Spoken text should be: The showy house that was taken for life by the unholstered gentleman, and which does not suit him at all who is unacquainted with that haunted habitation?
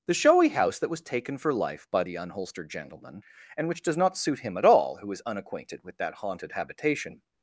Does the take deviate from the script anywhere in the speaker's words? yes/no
no